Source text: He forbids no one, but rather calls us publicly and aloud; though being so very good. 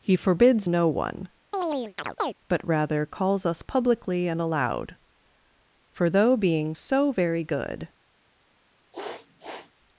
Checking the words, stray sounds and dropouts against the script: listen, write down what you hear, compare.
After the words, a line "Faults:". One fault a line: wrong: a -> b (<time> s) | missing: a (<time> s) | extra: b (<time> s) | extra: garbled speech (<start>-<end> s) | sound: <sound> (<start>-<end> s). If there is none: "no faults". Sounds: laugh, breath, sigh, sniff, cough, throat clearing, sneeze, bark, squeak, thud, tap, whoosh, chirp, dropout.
He forbids no one, but rather calls us publicly and aloud; for though being so very good.
Faults:
sound: chirp (1.5-2.3 s)
extra: for (5.9 s)
sound: sniff (8.9-9.7 s)